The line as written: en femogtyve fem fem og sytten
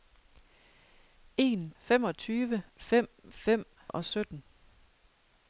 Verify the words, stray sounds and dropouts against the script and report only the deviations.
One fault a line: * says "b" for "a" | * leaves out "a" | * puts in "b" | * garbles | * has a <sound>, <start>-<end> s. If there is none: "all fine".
all fine